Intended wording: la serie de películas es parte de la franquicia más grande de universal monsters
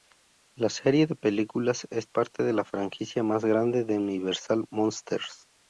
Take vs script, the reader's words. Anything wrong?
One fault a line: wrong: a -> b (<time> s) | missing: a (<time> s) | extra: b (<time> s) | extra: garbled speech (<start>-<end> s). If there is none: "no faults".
no faults